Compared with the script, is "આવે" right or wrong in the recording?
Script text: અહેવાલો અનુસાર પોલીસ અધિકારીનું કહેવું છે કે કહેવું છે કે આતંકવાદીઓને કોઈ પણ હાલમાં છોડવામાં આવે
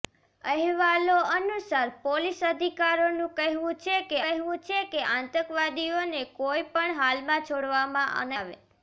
right